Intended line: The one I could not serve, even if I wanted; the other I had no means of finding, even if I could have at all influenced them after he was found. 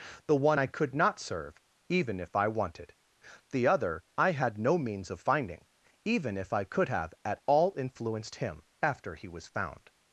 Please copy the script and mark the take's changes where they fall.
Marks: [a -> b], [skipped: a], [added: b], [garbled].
The one I could not serve, even if I wanted; the other I had no means of finding, even if I could have at all influenced [them -> him] after he was found.